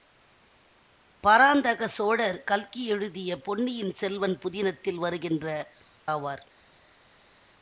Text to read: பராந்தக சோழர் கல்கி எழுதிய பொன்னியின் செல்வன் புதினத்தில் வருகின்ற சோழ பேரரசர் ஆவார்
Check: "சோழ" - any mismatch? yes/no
yes